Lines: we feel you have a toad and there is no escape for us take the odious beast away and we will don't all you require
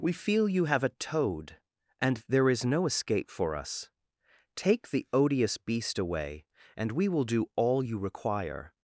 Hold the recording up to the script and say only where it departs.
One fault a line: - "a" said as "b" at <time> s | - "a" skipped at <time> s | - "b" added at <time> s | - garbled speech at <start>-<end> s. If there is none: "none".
- "don't" said as "do" at 7.2 s